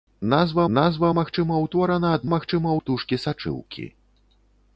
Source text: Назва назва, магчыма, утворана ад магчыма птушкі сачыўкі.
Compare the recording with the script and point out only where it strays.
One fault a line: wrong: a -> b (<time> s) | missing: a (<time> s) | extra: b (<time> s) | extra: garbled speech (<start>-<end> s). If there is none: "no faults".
no faults